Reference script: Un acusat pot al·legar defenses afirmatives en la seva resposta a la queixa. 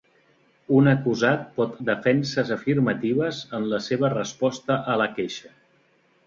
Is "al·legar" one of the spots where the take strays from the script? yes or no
yes